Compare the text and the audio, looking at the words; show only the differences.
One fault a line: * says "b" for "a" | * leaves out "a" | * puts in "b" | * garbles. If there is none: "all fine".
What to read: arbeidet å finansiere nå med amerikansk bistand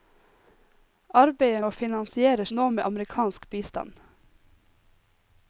all fine